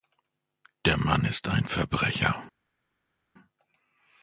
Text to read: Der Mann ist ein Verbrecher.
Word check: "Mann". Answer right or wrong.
right